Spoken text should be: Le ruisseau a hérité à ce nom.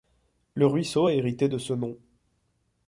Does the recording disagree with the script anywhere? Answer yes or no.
yes